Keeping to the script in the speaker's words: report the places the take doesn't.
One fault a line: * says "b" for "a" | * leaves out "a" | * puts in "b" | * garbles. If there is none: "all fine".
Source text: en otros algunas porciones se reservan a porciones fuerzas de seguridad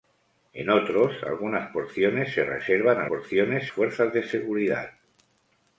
all fine